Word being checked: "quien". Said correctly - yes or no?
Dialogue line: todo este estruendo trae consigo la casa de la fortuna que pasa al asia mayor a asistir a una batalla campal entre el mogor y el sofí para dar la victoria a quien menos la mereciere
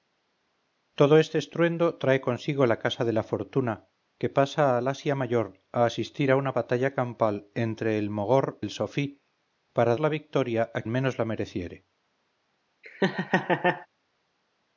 no